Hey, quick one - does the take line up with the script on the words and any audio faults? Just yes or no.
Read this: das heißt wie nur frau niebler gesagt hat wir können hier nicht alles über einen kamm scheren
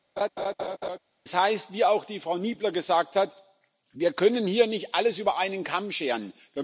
no